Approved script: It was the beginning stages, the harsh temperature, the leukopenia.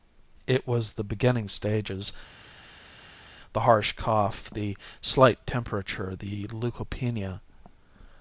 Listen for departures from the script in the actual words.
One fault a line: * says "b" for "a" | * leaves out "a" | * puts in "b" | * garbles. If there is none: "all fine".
* puts in "cough the slight"